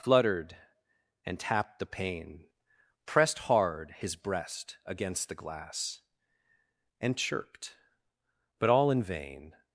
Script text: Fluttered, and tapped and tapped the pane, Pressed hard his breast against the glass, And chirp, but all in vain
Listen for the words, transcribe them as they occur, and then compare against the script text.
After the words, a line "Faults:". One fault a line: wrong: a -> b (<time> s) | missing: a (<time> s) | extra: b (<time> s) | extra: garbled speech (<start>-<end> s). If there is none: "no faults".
Fluttered, and tapped the pane, Pressed hard his breast against the glass, And chirped, but all in vain
Faults:
missing: and tapped (1.8 s)
wrong: chirp -> chirped (7.2 s)